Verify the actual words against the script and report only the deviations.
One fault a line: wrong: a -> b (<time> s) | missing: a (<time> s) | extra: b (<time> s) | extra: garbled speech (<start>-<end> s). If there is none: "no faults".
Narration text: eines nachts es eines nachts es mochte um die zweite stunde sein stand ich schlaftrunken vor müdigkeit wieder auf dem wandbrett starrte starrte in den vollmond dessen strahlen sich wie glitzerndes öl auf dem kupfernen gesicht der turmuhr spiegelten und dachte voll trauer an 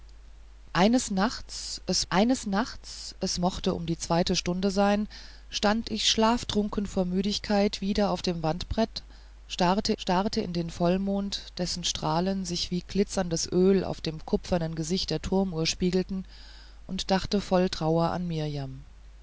no faults